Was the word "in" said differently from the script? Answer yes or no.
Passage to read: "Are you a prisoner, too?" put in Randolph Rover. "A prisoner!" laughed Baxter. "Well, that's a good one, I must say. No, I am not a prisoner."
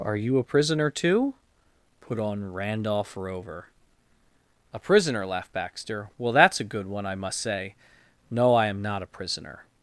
yes